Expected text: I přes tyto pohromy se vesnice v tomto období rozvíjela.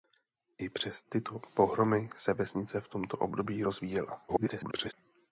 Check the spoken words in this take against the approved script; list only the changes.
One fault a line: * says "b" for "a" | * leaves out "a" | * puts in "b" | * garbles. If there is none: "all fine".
* garbles